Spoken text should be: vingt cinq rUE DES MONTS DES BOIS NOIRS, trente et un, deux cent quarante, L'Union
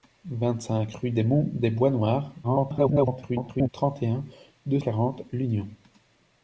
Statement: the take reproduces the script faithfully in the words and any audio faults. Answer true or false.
false